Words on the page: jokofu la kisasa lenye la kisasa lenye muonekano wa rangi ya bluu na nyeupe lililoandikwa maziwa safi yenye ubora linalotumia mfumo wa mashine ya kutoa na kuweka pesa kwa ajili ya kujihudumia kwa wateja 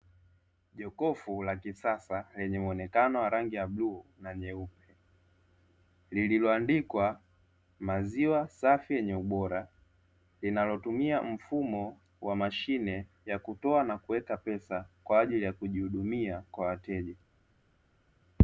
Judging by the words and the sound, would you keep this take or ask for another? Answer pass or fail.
fail